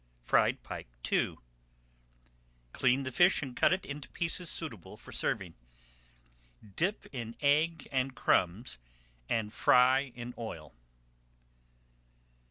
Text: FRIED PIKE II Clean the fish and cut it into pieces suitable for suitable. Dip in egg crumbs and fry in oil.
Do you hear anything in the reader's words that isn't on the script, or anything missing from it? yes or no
yes